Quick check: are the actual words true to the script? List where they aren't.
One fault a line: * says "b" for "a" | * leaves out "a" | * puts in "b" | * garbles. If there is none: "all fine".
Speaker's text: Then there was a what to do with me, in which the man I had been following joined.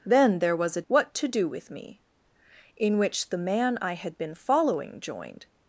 all fine